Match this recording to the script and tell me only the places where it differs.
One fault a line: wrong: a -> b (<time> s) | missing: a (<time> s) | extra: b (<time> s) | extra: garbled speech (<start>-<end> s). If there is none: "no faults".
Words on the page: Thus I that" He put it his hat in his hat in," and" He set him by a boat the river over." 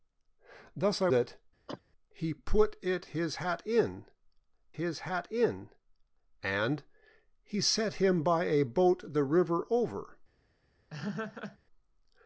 no faults